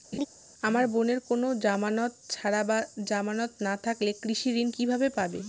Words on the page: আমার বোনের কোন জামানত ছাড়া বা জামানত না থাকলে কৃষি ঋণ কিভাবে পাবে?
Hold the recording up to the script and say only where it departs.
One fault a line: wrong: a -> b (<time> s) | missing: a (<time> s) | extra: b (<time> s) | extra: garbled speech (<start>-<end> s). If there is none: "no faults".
no faults